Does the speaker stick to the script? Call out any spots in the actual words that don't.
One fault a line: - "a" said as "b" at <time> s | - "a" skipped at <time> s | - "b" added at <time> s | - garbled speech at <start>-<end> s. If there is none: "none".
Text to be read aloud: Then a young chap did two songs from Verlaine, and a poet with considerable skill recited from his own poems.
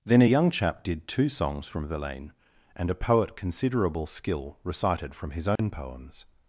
- "with" skipped at 3.4 s